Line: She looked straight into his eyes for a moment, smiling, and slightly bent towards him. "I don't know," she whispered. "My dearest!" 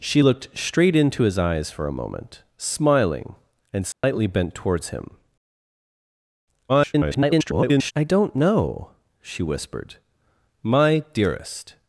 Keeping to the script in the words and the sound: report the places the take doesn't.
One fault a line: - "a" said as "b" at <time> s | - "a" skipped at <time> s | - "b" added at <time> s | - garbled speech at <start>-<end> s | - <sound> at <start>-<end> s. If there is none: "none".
- dropout at 3.9-4.0 s
- garbled speech at 6.7-7.9 s